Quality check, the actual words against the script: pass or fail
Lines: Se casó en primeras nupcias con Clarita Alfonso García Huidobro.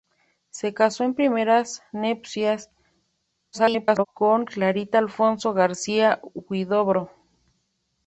fail